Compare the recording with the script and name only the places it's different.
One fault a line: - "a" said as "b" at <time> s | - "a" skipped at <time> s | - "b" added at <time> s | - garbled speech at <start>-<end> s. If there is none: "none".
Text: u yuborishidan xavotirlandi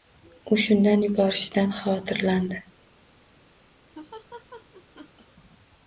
- "shundan" added at 0.6 s